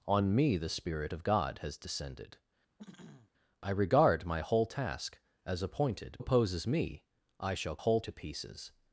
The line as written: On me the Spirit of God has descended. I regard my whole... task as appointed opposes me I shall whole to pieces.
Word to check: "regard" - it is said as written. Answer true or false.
true